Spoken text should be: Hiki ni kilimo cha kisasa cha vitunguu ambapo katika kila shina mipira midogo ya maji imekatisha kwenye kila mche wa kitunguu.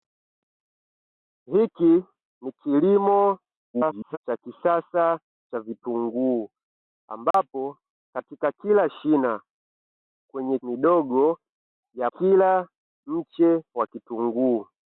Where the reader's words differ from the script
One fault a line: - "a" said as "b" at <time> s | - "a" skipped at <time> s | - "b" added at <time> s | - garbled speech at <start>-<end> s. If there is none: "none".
- garbled speech at 3.7-4.2 s
- "mipira" said as "kwenye" at 10.3 s
- "maji imekatisha kwenye" skipped at 12.1 s